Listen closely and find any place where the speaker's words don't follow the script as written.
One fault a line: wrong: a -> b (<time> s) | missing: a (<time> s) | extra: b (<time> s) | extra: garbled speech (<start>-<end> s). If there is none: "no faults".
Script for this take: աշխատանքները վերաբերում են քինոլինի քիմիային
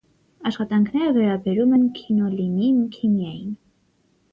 no faults